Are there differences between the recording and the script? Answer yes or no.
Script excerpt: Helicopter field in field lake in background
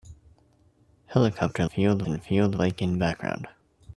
no